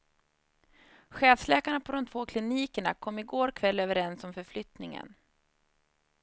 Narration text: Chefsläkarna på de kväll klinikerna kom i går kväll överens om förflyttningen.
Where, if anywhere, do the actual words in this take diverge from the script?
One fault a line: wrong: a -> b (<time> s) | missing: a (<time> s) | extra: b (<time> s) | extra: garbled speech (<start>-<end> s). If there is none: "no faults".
wrong: kväll -> två (2.0 s)